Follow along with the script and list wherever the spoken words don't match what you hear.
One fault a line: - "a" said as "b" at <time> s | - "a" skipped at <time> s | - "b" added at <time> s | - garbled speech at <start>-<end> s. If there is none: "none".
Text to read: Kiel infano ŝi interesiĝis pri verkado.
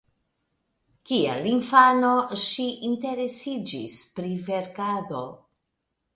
none